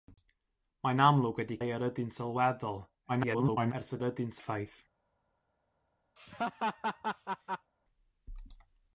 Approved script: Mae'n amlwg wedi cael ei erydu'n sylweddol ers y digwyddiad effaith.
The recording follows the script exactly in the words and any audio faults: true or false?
false